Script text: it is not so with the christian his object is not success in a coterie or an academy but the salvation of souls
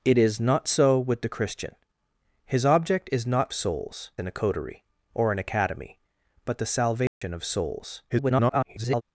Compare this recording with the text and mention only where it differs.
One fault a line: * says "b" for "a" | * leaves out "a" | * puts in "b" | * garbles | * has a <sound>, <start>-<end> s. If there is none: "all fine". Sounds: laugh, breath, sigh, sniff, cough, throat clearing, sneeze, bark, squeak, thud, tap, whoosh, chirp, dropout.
* says "souls" for "success"
* has a dropout, 7.1-7.2 s
* garbles